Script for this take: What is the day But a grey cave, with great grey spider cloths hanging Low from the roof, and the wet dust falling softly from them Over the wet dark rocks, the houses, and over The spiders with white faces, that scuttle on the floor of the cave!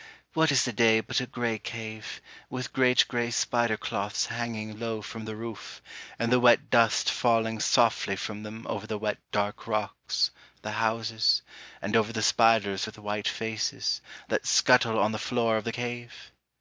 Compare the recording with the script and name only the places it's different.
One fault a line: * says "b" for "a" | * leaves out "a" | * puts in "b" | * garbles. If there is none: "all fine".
all fine